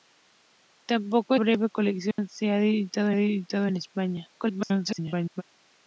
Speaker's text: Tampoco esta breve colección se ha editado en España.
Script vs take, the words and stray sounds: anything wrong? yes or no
yes